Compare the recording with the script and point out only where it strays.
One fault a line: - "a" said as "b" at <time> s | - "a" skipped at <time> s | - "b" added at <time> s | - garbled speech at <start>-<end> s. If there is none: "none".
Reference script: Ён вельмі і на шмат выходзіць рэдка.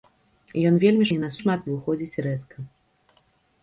none